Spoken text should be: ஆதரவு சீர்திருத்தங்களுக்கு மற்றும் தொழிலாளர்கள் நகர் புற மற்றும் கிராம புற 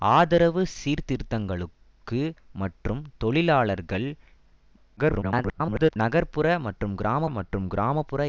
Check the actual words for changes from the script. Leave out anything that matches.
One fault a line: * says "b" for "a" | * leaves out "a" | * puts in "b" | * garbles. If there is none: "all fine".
* garbles
* puts in "மற்றும் கிராம"